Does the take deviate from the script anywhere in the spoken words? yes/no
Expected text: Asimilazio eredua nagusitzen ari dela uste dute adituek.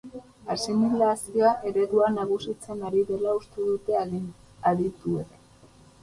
no